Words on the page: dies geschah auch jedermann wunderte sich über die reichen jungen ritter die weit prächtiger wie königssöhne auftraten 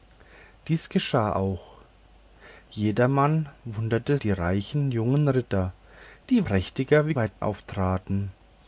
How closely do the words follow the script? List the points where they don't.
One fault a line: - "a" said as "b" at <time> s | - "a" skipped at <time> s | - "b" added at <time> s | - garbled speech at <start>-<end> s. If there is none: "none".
- "sich über" skipped at 4.2 s
- "weit" skipped at 6.4 s
- "königssöhne" said as "weit" at 7.1 s